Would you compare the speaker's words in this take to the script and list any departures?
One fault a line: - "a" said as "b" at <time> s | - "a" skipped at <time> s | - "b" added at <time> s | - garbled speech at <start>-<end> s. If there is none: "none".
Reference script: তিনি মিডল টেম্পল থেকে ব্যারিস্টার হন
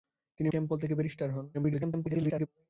- "মিডল" skipped at 0.5 s
- garbled speech at 1.5-2.5 s